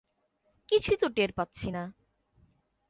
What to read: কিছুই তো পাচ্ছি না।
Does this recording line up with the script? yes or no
no